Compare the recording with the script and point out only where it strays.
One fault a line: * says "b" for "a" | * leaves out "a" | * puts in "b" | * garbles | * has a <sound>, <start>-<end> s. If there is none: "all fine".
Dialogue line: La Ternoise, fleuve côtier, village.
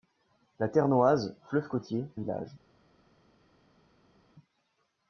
all fine